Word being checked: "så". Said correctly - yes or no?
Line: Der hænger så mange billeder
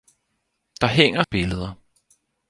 no